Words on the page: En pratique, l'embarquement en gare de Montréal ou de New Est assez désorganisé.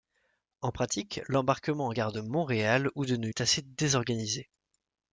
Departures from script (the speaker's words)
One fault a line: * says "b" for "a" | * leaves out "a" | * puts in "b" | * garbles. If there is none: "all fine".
all fine